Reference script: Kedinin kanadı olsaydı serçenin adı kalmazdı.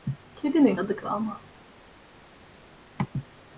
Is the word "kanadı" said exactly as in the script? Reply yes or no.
no